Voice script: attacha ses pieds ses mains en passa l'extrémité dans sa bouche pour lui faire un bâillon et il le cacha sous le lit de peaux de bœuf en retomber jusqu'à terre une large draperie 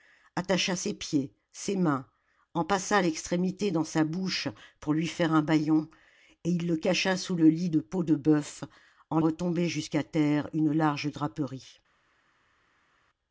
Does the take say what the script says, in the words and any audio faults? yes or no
yes